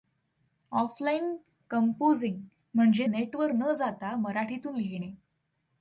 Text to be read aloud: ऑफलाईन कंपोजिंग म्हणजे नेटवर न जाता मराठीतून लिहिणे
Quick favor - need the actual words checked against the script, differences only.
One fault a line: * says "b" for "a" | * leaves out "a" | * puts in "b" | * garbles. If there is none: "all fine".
all fine